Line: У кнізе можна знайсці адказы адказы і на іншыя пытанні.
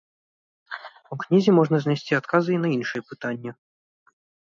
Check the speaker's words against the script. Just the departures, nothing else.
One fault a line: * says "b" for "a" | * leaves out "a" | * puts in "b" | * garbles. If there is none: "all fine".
* leaves out "адказы"